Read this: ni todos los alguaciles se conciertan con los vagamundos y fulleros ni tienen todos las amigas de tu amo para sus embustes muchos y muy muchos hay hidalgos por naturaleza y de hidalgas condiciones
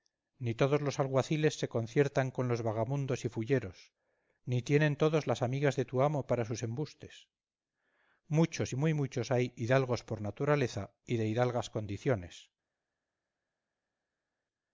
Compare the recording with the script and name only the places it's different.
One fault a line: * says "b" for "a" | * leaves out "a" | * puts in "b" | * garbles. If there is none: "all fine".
all fine